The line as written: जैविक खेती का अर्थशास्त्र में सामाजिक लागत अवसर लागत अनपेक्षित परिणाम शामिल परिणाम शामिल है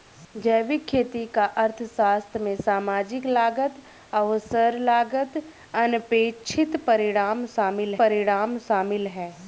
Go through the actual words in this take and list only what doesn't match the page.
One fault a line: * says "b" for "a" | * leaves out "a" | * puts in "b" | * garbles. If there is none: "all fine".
all fine